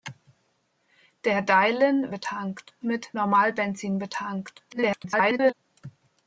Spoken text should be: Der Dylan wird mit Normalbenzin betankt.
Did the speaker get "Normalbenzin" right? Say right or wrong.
right